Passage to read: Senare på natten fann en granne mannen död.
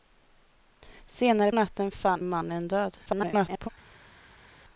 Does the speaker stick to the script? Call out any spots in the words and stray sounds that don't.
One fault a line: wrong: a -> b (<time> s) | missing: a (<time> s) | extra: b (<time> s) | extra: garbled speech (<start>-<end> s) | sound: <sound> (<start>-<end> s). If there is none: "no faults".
missing: på (1.5 s)
missing: en granne (2.2 s)
extra: garbled speech (3.1-3.7 s)